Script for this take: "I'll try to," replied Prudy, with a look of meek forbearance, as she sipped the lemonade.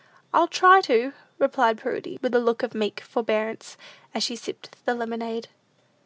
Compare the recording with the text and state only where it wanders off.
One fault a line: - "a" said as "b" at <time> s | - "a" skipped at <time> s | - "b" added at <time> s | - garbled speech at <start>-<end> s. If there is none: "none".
none